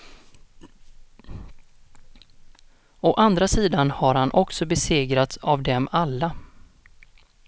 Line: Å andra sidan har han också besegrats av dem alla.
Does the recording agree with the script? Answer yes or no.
yes